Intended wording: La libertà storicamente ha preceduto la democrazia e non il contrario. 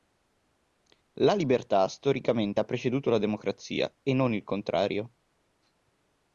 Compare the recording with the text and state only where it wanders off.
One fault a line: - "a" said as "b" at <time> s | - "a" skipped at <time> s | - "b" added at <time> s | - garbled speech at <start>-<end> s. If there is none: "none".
none